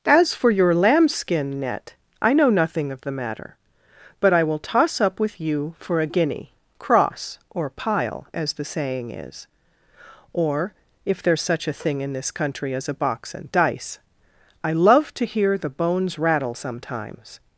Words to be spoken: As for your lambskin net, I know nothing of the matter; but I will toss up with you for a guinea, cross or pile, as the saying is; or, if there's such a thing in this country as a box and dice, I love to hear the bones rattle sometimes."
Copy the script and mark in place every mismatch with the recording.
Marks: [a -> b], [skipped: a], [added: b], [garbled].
As for your lambskin net, I know nothing of the matter; but I will toss up with you for a guinea, cross or pile, as the saying is; or, if there's such a thing in this country as a box and dice, I love to hear the bones rattle sometimes."